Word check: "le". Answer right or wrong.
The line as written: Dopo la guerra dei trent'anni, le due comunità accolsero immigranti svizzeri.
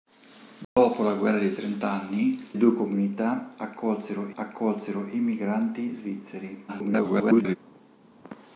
wrong